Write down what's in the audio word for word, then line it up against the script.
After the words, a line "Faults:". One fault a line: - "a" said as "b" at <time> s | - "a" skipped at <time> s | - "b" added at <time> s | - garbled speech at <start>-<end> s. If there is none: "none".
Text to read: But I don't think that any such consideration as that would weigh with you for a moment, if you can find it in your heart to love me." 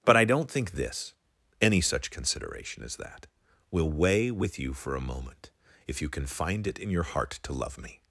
But I don't think this any such consideration as that will weigh with you for a moment, if you can find it in your heart to love me."
Faults:
- "that" said as "this" at 0.7 s
- "would" said as "will" at 3.7 s